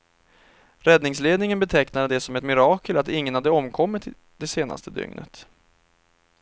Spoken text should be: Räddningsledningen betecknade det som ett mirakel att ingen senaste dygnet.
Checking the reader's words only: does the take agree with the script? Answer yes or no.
no